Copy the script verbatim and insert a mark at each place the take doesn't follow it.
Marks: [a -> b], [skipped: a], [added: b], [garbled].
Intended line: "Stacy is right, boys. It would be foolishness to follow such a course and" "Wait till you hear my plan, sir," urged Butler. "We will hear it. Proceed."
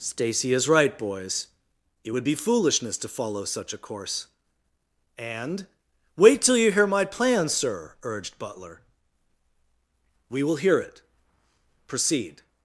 "Stacy is right, boys. It would be foolishness to follow such a course and" "Wait till you hear my plan, sir," urged Butler. "We will hear it. Proceed."